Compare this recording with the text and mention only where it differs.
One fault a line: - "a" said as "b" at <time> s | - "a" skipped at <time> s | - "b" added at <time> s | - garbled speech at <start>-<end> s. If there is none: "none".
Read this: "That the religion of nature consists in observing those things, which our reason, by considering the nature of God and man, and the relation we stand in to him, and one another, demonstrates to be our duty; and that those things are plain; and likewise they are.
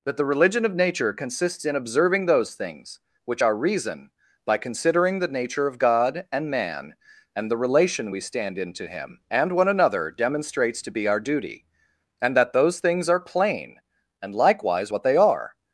- "what" added at 14.9 s